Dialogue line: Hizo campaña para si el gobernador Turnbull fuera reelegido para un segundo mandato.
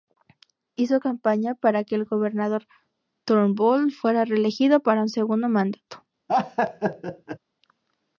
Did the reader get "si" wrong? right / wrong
wrong